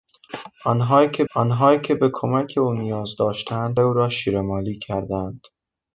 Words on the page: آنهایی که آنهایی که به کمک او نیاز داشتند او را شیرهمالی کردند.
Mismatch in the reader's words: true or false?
false